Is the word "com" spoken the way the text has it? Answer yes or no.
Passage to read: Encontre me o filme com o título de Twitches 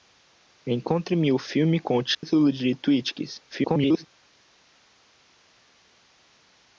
yes